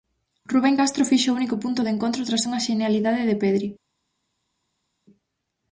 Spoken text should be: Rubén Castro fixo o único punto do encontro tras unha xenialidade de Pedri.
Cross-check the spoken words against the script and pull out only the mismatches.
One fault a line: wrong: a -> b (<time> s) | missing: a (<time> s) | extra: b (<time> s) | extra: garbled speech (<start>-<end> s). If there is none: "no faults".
no faults